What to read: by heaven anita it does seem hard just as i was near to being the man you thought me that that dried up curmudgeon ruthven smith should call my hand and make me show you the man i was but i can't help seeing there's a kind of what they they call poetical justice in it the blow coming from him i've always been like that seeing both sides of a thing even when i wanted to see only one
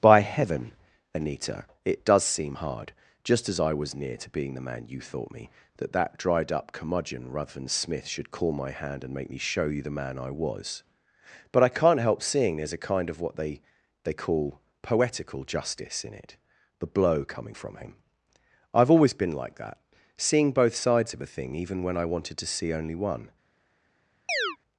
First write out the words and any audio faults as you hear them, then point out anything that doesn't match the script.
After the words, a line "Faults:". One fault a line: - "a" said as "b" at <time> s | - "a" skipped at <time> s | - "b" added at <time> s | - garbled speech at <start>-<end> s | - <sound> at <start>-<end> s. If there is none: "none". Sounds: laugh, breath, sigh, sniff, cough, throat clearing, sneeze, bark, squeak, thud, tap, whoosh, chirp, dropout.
by heaven anita it does seem hard just as i was near to being the man you thought me that that dried up curmudgeon ruthven smith should call my hand and make me show you the man i was but i can't help seeing there's a kind of what they they call poetical justice in it the blow coming from him i've always been like that seeing both sides of a thing even when i wanted to see only one
Faults:
- chirp at 24.3-24.6 s